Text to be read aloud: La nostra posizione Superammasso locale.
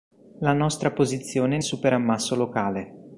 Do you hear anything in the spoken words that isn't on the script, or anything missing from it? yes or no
no